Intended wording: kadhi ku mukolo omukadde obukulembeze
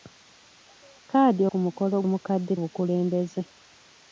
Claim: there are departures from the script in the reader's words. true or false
false